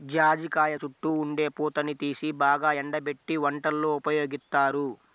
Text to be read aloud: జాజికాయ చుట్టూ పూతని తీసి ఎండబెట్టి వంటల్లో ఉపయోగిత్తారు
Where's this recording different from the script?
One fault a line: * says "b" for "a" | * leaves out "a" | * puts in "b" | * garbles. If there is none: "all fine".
* puts in "ఉండే"
* puts in "బాగా"